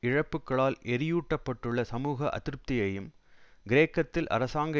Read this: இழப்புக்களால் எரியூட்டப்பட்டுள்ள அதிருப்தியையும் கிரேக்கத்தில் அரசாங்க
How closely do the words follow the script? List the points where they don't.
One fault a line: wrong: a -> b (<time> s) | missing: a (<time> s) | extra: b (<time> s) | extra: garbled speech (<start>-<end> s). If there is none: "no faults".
extra: சமூக (1.9 s)